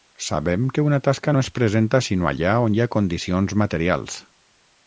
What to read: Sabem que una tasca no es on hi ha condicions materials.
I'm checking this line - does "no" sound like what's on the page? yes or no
yes